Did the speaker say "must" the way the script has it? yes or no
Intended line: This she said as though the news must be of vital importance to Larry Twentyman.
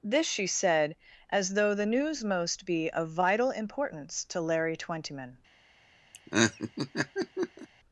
no